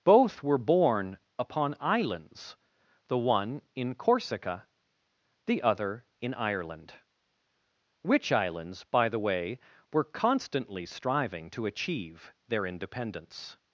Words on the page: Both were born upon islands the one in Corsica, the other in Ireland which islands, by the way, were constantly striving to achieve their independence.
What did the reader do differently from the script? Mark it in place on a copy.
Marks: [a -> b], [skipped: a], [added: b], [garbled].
Both were born upon islands the one in Corsica, the other in Ireland which islands, by the way, were constantly striving to achieve their independence.